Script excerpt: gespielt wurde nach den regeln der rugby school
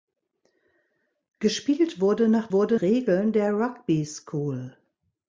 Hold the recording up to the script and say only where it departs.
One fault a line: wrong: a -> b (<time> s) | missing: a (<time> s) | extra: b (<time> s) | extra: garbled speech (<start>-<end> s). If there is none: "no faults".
wrong: den -> wurde (2.5 s)